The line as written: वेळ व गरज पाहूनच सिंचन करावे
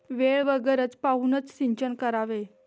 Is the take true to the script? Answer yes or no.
yes